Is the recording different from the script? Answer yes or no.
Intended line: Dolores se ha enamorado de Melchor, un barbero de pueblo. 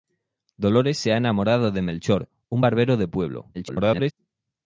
yes